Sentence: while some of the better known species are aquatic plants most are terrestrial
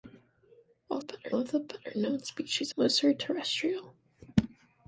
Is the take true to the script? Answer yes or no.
no